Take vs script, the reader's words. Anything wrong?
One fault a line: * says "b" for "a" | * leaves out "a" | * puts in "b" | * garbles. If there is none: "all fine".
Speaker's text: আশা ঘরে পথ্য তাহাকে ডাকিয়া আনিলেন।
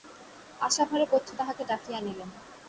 all fine